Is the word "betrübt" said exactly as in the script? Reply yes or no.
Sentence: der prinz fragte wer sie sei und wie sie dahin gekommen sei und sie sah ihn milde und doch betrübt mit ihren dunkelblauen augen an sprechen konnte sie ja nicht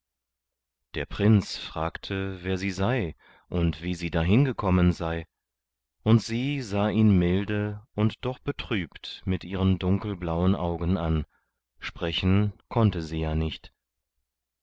yes